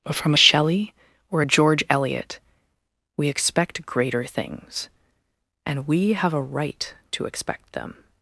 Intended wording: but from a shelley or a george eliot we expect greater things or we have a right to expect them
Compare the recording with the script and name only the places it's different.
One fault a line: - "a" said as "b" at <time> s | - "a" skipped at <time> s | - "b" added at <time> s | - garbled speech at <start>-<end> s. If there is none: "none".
- "or" said as "and" at 5.7 s